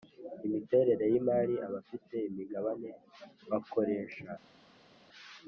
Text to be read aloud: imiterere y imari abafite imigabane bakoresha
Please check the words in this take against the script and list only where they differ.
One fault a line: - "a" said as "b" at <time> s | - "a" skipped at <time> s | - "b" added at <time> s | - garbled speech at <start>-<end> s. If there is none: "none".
none